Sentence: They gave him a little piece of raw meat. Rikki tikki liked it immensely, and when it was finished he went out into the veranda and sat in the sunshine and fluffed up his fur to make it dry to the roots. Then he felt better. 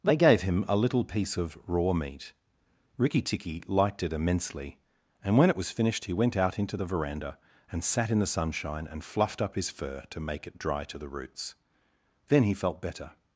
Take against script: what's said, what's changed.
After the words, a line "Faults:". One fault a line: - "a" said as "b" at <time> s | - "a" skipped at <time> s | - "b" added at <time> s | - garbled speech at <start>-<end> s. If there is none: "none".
They gave him a little piece of raw meat. Rikki tikki liked it immensely, and when it was finished he went out into the veranda and sat in the sunshine and fluffed up his fur to make it dry to the roots. Then he felt better.
Faults:
none